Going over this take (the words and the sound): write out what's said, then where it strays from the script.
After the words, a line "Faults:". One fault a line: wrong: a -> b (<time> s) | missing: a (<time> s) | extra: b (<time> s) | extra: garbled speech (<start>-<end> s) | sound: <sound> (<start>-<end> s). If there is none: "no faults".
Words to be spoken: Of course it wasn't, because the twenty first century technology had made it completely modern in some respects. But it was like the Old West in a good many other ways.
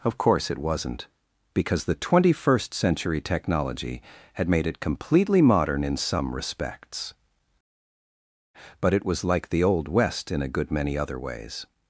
Of course it wasn't, because the twenty first century technology had made it completely modern in some respects. But it was like the Old West in a good many other ways.
Faults:
no faults